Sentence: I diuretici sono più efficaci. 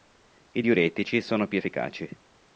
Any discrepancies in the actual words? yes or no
no